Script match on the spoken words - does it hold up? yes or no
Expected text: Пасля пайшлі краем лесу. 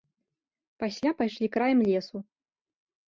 yes